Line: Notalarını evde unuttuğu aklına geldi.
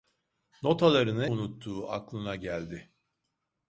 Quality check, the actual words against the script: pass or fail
fail